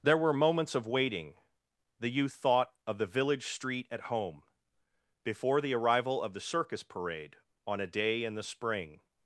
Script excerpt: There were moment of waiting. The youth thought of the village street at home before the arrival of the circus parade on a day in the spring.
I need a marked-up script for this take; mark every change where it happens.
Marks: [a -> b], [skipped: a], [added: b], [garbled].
There were [moment -> moments] of waiting. The youth thought of the village street at home before the arrival of the circus parade on a day in the spring.